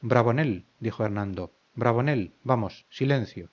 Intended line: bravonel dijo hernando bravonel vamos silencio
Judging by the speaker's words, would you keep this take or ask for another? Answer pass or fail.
pass